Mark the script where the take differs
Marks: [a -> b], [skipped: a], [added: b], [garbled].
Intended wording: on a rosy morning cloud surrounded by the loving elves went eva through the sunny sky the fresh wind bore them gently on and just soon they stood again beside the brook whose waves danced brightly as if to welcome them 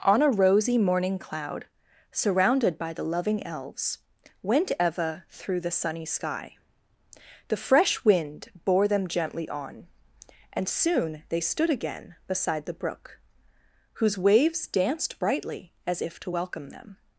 on a rosy morning cloud surrounded by the loving elves went eva through the sunny sky the fresh wind bore them gently on and [skipped: just] soon they stood again beside the brook whose waves danced brightly as if to welcome them